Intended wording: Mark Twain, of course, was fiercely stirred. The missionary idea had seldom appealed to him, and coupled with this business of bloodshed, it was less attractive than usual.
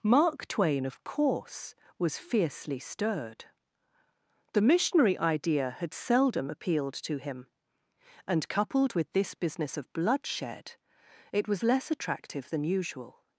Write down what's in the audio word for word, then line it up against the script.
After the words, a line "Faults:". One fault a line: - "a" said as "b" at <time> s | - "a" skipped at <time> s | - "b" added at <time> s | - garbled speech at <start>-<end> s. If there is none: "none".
Mark Twain, of course, was fiercely stirred. The missionary idea had seldom appealed to him, and coupled with this business of bloodshed, it was less attractive than usual.
Faults:
none